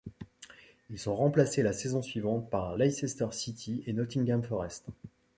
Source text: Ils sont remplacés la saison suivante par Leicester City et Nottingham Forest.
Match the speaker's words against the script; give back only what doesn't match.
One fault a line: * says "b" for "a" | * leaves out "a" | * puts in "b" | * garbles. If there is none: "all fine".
all fine